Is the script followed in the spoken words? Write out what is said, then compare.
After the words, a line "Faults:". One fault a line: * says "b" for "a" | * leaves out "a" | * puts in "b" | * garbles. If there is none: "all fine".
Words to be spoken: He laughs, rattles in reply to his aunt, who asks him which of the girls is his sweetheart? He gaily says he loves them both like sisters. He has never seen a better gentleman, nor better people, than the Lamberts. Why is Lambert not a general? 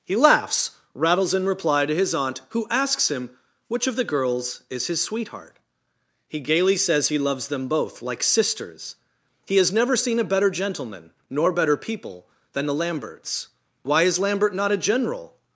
He laughs, rattles in reply to his aunt, who asks him which of the girls is his sweetheart? He gaily says he loves them both like sisters. He has never seen a better gentleman, nor better people, than the Lamberts. Why is Lambert not a general?
Faults:
all fine